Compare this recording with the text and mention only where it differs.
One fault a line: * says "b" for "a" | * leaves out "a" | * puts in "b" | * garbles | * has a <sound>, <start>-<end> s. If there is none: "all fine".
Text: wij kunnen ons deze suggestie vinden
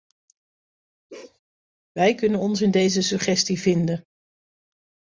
* has a bark, 1.1-1.4 s
* puts in "in"